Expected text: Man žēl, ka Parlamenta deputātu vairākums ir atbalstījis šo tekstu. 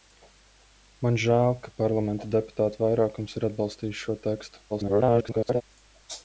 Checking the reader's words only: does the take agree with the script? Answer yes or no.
no